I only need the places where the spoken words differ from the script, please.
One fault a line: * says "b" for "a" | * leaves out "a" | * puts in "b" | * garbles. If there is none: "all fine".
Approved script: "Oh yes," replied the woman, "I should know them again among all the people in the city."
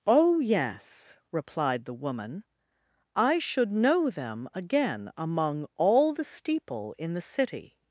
* says "steeple" for "people"